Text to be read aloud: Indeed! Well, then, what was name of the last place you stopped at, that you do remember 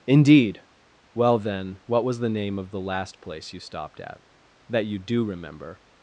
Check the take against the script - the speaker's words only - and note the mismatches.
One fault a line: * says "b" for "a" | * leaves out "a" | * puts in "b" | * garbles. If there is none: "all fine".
* puts in "the"